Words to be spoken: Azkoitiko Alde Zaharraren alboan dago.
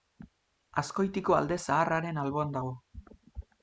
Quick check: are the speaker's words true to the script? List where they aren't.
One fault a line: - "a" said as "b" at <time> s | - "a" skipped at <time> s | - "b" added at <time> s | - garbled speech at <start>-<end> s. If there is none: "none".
none